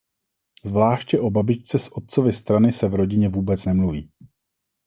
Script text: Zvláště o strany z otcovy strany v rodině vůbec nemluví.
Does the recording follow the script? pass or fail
fail